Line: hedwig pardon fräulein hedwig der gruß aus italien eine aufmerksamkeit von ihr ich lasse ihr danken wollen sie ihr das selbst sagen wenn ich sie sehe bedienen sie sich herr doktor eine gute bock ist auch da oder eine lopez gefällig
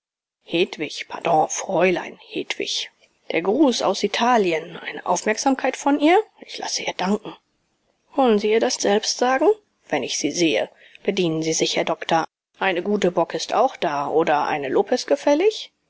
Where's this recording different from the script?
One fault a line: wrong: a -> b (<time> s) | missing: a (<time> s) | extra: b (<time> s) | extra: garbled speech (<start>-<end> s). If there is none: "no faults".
no faults